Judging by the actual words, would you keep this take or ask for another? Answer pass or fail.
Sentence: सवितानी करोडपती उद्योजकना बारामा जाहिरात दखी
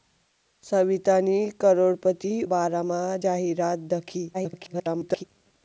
fail